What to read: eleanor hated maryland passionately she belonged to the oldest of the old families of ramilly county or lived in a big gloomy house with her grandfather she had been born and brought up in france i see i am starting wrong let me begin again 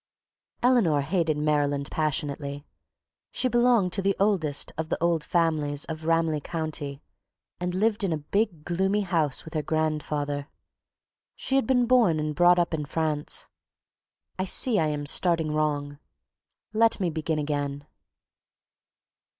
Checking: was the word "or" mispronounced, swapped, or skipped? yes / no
yes